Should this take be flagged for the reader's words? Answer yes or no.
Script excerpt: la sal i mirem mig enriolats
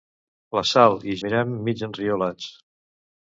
no